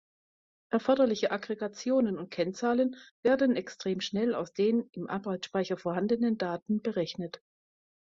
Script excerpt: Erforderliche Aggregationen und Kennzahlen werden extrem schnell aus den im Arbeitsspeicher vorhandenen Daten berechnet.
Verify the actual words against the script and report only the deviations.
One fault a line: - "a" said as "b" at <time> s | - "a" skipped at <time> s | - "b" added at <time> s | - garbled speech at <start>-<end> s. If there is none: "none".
none